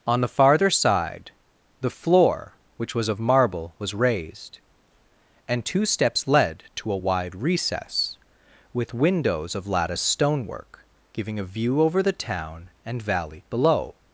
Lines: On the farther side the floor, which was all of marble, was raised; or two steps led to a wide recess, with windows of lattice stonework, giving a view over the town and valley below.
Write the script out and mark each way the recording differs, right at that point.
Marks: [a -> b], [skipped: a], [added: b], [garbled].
On the farther side the floor, which was [skipped: all] of marble, was raised; [or -> and] two steps led to a wide recess, with windows of lattice stonework, giving a view over the town and valley below.